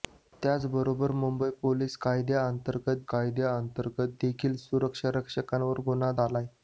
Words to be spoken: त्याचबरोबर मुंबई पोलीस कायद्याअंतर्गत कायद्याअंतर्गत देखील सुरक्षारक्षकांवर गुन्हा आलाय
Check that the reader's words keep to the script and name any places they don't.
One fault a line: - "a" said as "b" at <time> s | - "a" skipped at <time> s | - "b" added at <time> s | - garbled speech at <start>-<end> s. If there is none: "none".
none